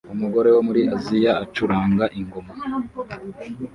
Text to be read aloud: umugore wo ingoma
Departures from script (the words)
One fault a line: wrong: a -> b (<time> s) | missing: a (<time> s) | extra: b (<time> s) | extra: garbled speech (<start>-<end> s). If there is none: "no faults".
extra: muri Aziya acuranga (0.6 s)